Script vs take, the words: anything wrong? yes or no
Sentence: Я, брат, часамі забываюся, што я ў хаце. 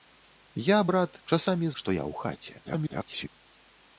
yes